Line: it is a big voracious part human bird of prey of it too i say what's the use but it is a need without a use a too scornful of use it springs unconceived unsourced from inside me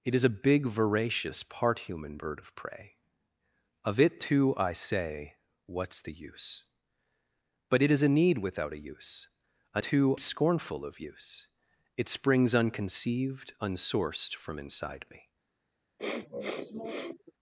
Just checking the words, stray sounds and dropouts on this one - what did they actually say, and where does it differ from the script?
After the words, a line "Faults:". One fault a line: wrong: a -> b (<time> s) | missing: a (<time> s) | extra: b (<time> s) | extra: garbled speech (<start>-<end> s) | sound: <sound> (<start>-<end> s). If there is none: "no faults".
it is a big voracious part human bird of prey of it too i say what's the use but it is a need without a use a too scornful of use it springs unconceived unsourced from inside me
Faults:
sound: sniff (16.0-17.3 s)